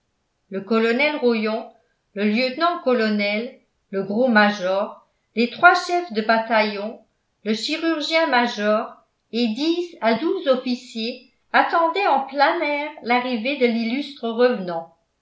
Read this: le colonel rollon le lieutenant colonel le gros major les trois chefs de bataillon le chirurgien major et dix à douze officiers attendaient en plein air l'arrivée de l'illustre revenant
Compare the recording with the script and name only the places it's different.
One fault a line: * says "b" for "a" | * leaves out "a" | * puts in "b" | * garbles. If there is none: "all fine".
all fine